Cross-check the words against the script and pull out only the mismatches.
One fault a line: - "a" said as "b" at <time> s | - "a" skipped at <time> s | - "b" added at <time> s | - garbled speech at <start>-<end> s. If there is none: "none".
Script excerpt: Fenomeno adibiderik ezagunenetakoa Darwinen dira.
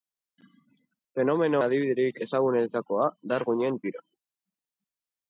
none